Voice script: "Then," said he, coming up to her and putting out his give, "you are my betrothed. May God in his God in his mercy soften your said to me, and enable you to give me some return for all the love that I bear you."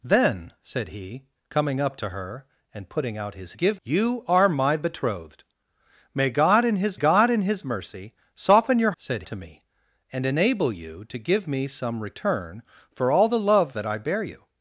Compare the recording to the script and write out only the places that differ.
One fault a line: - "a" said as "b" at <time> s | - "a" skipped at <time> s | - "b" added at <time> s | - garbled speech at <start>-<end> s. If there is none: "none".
none